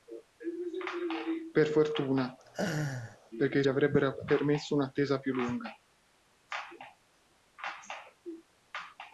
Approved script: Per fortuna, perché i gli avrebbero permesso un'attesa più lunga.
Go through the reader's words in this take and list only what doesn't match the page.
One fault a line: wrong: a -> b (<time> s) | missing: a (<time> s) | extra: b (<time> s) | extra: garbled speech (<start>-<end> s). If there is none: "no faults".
no faults